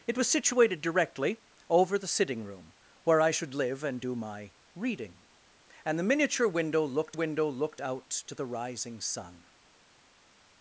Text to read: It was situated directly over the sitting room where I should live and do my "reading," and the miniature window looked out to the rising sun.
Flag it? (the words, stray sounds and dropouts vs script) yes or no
yes